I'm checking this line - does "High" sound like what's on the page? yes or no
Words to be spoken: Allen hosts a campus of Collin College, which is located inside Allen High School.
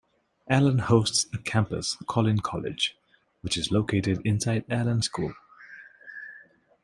no